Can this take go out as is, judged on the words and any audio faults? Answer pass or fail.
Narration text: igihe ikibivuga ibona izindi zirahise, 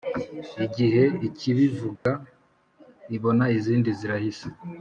fail